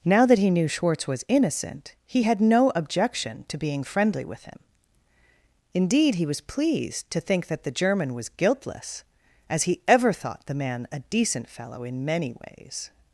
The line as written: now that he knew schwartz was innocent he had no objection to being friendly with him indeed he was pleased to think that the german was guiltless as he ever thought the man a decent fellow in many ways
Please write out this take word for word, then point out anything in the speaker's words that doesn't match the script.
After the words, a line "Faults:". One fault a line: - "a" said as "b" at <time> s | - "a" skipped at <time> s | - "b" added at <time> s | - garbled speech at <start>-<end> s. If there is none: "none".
now that he knew schwartz was innocent he had no objection to being friendly with him indeed he was pleased to think that the german was guiltless as he ever thought the man a decent fellow in many ways
Faults:
none